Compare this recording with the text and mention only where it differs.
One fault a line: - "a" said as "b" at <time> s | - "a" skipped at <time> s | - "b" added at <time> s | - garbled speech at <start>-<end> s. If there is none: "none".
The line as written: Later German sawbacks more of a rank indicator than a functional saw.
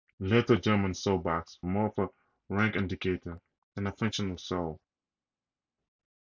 none